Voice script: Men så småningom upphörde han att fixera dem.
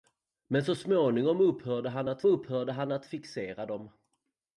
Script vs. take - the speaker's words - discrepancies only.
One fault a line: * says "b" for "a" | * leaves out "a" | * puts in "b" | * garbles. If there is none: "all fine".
* puts in "upphörde han att"